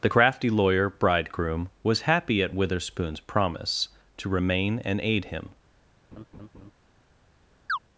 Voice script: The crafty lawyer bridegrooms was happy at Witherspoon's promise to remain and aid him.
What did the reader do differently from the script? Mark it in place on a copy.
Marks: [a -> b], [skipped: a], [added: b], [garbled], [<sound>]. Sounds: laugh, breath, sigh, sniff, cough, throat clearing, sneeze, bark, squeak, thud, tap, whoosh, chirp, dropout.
The crafty lawyer [bridegrooms -> bridegroom] was happy at Witherspoon's promise to remain and aid him. [laugh] [chirp]